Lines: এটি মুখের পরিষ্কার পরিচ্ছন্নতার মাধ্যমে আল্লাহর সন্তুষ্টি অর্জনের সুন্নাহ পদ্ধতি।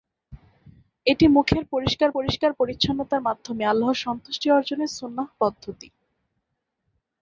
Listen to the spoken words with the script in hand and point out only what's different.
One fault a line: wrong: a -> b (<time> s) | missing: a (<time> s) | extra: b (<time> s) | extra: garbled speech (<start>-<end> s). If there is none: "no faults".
extra: পরিষ্কার (2.2 s)